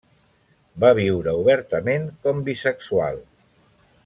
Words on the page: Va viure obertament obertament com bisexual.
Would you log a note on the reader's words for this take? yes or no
yes